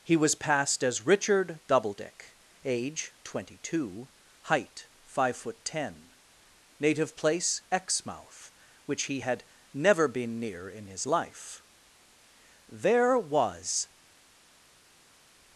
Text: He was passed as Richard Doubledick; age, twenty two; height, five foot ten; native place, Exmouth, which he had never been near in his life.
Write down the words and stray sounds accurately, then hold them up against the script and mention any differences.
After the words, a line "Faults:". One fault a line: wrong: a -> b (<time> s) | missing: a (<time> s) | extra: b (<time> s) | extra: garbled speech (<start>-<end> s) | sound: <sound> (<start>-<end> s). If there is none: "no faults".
He was passed as Richard Doubledick; age, twenty two; height, five foot ten; native place, Exmouth, which he had never been near in his life. There was
Faults:
extra: There was (12.7 s)